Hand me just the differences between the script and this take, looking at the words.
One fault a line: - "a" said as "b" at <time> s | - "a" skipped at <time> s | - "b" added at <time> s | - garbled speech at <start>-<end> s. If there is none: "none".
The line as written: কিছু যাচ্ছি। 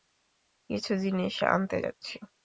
- "জিনিস আনতে" added at 0.9 s